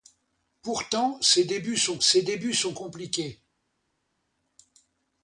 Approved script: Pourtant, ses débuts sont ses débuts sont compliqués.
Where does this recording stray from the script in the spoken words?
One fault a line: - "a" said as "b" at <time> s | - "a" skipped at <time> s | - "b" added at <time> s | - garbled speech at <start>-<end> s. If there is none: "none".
none